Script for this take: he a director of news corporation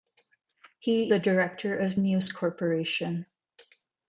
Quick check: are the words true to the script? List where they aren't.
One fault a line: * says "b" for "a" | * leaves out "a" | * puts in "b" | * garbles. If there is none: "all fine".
all fine